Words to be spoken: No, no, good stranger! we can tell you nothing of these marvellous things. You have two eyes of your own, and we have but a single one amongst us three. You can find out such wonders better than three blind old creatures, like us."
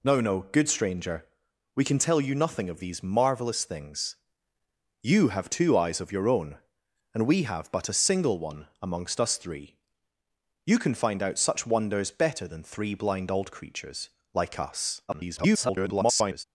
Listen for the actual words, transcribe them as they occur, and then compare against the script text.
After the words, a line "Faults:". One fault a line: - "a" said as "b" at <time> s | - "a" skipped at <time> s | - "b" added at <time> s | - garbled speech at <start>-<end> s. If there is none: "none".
No, no, good stranger! we can tell you nothing of these marvellous things. You have two eyes of your own, and we have but a single one amongst us three. You can find out such wonders better than three blind old creatures, like us." [garbled]
Faults:
- garbled speech at 15.1-16.4 s